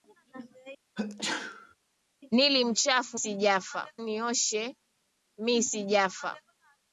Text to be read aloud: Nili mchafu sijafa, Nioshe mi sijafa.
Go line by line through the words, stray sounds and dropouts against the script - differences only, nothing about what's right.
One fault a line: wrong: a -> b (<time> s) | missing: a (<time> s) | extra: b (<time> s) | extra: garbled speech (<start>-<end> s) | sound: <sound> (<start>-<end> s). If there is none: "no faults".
sound: sneeze (1.0-1.8 s)